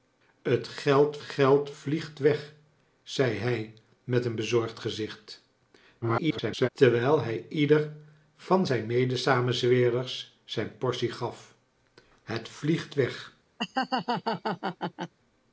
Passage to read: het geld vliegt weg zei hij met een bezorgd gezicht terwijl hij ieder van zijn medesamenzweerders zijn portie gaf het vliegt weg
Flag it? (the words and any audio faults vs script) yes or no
yes